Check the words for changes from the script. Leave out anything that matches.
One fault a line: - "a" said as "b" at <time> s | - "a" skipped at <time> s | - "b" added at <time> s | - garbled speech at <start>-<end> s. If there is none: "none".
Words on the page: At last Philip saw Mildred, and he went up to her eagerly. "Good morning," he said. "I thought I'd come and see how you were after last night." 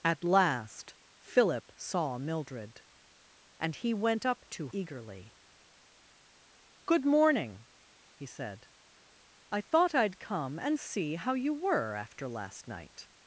- "her" skipped at 4.7 s